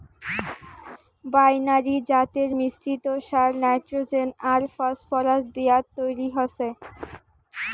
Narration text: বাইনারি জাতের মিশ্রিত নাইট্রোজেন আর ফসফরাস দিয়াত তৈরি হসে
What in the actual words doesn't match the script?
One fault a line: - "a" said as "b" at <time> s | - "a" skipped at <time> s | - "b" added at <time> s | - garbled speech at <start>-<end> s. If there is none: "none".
- "সার" added at 3.3 s